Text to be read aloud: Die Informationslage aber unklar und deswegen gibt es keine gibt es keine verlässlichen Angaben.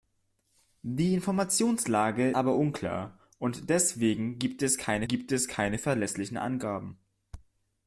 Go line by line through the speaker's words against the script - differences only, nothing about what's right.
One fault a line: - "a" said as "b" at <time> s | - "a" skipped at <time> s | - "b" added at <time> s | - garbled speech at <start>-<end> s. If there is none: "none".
none